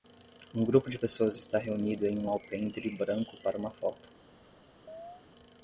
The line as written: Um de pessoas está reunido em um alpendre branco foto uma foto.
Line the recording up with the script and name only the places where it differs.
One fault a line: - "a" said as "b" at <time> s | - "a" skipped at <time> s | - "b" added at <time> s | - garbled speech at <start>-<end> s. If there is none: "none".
- "grupo" added at 0.7 s
- "foto" said as "para" at 3.4 s